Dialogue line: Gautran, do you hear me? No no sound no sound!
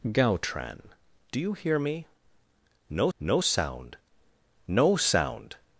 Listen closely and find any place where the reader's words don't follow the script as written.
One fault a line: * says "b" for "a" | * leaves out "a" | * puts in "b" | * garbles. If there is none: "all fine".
all fine